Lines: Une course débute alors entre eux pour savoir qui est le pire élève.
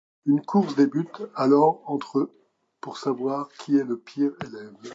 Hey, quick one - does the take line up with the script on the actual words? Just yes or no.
yes